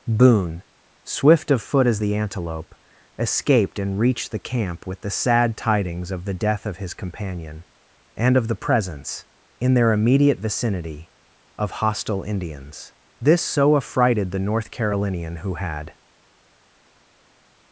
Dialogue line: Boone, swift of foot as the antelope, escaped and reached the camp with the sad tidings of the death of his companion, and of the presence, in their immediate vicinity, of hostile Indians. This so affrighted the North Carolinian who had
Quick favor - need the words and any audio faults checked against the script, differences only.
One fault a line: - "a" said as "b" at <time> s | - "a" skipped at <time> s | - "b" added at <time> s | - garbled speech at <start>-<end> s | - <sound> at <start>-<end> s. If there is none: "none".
none